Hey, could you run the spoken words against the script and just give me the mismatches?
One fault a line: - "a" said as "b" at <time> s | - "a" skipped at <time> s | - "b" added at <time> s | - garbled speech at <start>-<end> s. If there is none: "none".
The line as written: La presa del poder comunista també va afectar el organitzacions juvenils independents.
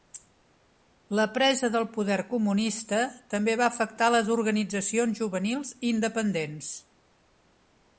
- "el" said as "les" at 4.2 s